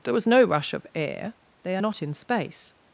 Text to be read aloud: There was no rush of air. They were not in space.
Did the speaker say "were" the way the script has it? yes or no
no